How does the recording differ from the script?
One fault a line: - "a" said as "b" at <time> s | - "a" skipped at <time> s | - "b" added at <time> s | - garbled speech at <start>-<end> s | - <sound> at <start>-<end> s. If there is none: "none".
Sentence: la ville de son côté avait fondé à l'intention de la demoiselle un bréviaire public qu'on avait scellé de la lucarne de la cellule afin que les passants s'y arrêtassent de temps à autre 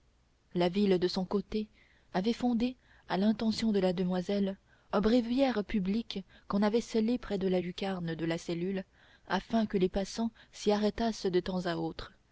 - "près" added at 7.2 s